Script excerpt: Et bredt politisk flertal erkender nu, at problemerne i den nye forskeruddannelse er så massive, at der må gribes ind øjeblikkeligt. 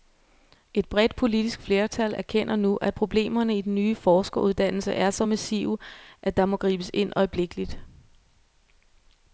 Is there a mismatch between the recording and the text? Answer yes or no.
no